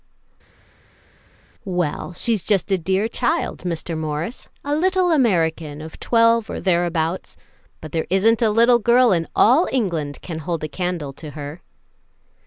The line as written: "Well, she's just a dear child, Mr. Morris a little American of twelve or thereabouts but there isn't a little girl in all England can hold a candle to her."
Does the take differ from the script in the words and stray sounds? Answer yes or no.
no